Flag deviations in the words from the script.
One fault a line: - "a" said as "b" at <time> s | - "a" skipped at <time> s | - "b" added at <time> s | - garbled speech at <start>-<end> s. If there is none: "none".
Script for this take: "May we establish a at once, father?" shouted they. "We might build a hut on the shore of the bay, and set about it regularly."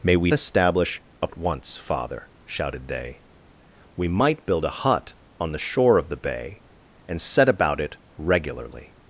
none